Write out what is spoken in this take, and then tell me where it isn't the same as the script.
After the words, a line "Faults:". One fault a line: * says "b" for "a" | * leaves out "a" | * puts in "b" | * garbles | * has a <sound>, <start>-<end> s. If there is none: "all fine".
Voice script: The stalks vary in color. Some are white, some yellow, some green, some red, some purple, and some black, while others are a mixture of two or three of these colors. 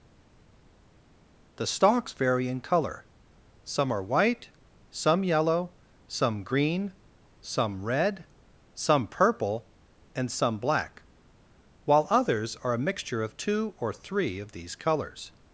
The stalks vary in color. Some are white, some yellow, some green, some red, some purple, and some black, while others are a mixture of two or three of these colors.
Faults:
all fine